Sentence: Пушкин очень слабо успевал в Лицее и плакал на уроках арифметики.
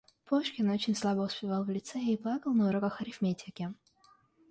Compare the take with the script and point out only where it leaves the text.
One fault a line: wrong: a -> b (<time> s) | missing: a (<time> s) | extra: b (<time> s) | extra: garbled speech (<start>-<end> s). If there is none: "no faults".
no faults